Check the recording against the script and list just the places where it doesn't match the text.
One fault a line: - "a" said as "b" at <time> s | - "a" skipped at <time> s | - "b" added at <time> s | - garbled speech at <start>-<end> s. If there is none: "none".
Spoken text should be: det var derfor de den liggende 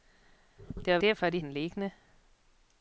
none